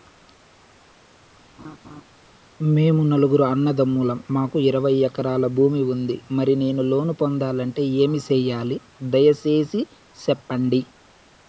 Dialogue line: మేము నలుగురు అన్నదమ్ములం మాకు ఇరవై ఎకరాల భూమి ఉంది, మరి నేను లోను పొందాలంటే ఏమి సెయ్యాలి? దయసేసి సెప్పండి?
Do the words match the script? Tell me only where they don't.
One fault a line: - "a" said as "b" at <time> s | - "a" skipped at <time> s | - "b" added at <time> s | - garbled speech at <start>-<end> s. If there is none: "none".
none